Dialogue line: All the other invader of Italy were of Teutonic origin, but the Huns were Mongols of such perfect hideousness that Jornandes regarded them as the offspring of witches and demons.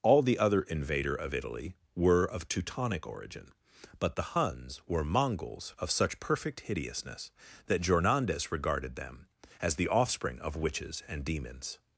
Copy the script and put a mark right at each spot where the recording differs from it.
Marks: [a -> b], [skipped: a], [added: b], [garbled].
All the other invader of Italy were of Teutonic origin, but the Huns were Mongols of such perfect hideousness that Jornandes regarded them as the offspring of witches and demons.